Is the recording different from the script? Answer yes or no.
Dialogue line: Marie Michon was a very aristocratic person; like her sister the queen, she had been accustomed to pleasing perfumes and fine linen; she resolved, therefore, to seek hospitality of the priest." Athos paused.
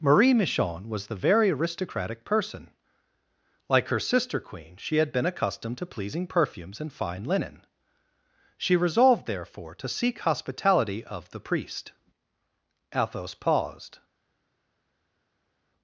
yes